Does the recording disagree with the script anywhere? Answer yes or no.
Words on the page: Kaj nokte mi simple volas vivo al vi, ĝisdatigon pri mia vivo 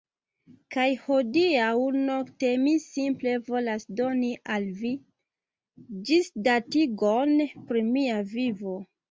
yes